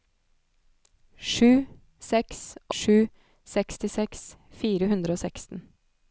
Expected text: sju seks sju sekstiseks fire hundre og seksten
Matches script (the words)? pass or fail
pass